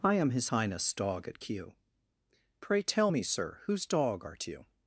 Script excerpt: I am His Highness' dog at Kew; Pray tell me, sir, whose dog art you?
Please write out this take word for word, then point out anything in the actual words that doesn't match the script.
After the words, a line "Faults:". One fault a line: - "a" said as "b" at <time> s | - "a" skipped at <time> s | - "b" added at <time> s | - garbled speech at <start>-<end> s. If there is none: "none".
I am His Highness' dog at Kew; Pray tell me, sir, whose dog art you?
Faults:
none